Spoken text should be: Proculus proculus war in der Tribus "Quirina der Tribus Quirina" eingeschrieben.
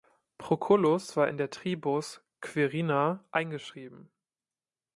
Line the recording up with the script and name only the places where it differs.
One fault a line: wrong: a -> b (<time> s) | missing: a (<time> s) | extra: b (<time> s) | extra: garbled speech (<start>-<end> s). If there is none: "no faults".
missing: proculus (1.1 s)
missing: der Tribus Quirina (3.3 s)